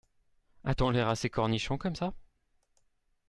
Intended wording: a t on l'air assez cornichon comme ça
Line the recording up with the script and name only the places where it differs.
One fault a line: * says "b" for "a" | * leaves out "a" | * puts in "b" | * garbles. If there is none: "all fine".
all fine